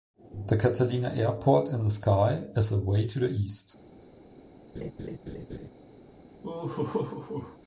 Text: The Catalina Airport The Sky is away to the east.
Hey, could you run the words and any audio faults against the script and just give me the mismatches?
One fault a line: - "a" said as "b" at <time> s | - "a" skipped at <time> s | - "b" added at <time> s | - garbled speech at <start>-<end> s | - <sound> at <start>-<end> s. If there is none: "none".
- "In" added at 1.7 s
- laugh at 4.7-5.7 s
- laugh at 6.4-7.6 s